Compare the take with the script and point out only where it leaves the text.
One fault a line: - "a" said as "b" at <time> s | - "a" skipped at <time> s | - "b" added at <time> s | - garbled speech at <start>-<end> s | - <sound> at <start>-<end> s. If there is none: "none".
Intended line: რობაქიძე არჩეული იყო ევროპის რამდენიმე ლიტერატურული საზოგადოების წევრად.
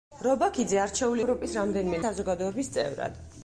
- "იყო" skipped at 1.2 s
- "ლიტერატურული" skipped at 2.0 s